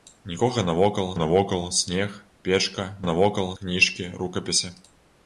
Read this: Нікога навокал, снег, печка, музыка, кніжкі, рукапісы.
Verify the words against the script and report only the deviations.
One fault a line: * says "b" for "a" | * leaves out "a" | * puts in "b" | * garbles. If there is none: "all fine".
* puts in "навокал"
* says "навокал" for "музыка"